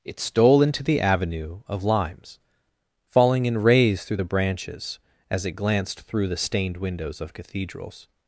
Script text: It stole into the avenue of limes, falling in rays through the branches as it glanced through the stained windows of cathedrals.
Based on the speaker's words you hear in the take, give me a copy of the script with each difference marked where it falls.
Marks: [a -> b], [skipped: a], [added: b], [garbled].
It stole into the avenue of limes, falling in rays through the branches as it glanced through the stained windows of cathedrals.